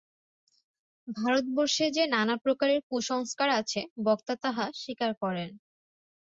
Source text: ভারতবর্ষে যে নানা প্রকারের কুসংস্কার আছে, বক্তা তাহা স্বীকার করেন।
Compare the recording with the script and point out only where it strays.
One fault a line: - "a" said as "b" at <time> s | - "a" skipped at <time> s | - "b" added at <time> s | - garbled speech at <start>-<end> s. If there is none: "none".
none